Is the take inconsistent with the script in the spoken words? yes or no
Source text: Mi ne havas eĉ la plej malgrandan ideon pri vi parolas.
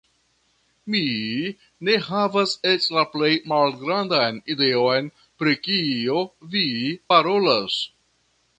yes